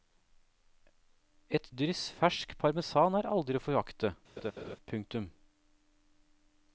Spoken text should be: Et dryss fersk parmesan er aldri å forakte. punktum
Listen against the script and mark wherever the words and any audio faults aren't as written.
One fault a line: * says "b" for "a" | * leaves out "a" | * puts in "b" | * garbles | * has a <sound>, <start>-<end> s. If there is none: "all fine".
* has a laugh, 4.4-4.8 s